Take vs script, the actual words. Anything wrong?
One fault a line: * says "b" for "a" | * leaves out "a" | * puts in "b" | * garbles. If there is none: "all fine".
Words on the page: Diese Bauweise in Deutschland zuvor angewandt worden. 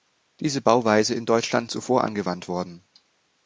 all fine